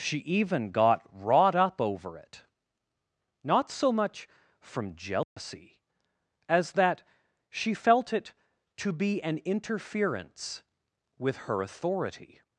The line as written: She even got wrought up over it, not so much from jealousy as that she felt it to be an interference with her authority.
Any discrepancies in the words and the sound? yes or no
yes